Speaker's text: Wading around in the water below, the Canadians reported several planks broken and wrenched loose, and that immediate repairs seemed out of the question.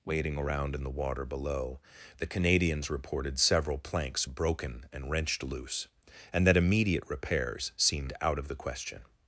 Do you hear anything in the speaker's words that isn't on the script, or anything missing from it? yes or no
no